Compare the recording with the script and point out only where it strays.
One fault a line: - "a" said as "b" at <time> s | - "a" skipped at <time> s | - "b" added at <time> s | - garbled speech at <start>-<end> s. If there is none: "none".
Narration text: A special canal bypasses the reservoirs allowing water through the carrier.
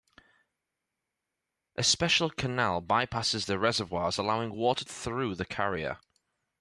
none